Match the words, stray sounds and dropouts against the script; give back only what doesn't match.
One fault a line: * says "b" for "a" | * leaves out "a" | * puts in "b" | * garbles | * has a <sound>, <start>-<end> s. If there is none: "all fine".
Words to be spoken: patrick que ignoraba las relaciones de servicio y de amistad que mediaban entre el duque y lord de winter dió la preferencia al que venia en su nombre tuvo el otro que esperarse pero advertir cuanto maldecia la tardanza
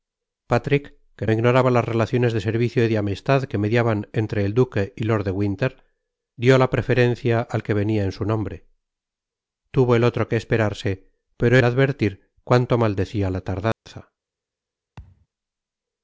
* has a dropout, 13.7-13.9 s
* has a thud, 15.0-15.3 s